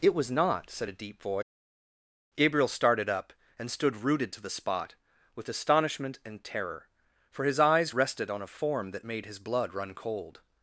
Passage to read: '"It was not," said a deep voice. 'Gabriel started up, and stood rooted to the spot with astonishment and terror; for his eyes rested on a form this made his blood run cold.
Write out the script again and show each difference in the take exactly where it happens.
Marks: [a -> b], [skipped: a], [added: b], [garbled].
'"It was not," said a deep voice. 'Gabriel started up, and stood rooted to the spot with astonishment and terror; for his eyes rested on a form [this -> that] made his blood run cold.